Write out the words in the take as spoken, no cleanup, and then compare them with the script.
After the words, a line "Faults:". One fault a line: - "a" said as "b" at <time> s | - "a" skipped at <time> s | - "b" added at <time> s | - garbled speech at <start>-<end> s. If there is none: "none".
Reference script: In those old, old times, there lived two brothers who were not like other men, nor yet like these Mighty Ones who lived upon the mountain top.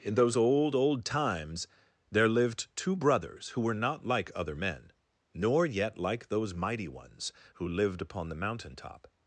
In those old, old times, there lived two brothers who were not like other men, nor yet like those Mighty Ones who lived upon the mountain top.
Faults:
- "these" said as "those" at 6.3 s